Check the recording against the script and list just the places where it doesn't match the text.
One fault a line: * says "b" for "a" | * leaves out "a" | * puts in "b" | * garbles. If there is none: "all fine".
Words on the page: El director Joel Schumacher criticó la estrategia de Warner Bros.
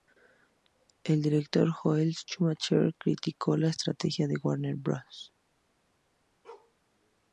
all fine